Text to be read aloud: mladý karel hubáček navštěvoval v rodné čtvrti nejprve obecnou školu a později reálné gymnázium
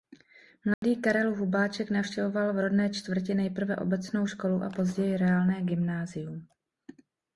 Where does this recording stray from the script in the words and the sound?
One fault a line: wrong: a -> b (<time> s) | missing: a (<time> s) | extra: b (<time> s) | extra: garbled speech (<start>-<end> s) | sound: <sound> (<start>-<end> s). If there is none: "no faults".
sound: dropout (0.7-0.8 s)